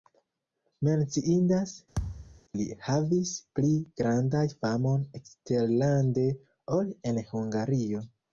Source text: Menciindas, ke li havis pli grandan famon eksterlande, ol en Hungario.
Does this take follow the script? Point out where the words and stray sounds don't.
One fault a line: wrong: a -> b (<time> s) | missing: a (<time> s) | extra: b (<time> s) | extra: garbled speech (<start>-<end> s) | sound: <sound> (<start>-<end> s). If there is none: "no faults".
missing: ke (1.7 s)
sound: thud (2.0-2.4 s)